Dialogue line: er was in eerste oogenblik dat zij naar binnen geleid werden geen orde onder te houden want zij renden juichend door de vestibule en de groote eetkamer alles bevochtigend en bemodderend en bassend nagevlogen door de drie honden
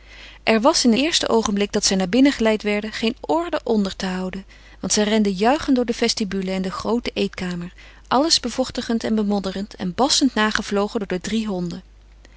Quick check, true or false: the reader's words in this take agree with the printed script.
true